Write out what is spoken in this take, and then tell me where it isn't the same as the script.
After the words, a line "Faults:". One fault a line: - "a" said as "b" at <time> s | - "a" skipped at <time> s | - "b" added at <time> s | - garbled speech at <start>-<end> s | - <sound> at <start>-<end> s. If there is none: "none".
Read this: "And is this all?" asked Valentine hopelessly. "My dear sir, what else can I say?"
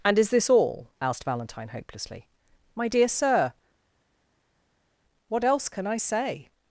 "And is this all?" asked Valentine hopelessly. "My dear sir, what else can I say?"
Faults:
none